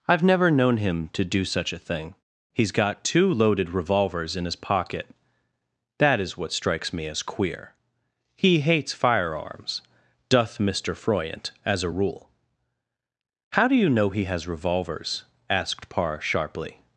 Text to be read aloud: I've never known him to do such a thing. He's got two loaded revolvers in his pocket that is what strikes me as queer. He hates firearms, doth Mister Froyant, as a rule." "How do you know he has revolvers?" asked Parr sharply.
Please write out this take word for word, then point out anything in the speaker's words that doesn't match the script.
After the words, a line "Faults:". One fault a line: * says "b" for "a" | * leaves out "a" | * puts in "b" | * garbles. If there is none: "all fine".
I've never known him to do such a thing. He's got two loaded revolvers in his pocket that is what strikes me as queer. He hates firearms, doth Mister Froyant, as a rule." "How do you know he has revolvers?" asked Parr sharply.
Faults:
all fine